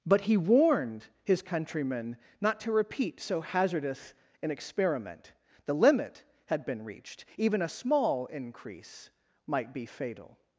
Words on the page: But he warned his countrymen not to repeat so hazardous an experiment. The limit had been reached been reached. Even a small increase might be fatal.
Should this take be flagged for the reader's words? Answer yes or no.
yes